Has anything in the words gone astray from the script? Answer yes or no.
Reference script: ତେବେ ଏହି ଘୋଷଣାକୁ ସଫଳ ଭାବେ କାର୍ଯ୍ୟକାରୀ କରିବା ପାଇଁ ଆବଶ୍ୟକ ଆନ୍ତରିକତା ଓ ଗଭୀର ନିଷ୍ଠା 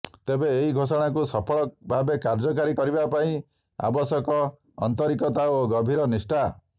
no